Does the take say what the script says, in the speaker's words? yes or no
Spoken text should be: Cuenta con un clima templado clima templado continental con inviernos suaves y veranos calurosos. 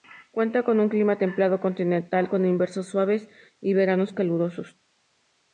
no